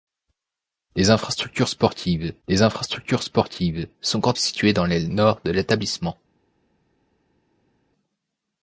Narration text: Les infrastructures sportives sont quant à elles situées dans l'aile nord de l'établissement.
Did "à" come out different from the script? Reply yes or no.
yes